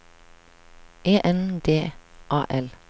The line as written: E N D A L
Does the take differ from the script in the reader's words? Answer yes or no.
no